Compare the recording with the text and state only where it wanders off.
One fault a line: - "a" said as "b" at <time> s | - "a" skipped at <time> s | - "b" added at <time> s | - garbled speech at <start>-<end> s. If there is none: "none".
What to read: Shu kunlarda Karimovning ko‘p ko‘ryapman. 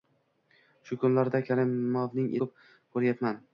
none